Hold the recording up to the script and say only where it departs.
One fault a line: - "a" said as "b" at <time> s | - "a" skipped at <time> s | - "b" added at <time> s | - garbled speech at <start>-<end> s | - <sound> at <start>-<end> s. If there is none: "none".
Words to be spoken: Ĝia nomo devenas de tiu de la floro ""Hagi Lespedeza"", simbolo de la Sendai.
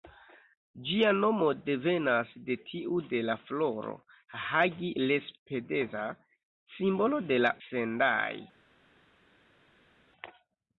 none